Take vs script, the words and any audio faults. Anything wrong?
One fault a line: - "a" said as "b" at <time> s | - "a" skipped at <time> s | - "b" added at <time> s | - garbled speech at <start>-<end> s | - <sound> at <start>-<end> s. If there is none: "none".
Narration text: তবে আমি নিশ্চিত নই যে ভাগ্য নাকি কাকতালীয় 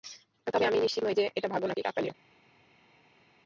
- "এটা" added at 1.4 s